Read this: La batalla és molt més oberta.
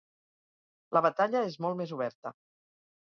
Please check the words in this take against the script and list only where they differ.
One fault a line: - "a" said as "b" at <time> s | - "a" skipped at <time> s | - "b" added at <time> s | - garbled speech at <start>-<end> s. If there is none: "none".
none